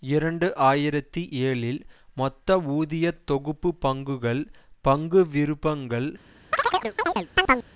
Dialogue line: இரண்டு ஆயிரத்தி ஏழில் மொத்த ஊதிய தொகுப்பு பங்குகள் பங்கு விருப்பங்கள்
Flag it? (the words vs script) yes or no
no